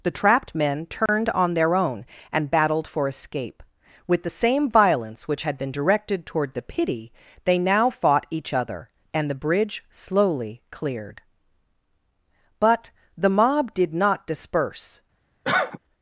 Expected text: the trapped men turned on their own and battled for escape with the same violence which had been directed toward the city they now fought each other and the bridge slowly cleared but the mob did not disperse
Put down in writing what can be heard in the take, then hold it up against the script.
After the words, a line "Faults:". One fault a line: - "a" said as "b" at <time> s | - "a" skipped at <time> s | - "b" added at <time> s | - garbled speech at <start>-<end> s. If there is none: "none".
the trapped men turned on their own and battled for escape with the same violence which had been directed toward the pity they now fought each other and the bridge slowly cleared but the mob did not disperse
Faults:
- "city" said as "pity" at 6.6 s